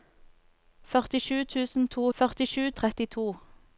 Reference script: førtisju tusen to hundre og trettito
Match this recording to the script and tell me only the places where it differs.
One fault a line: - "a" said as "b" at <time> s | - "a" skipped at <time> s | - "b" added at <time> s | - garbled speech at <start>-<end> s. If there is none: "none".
- "hundre" said as "førtisju" at 2.2 s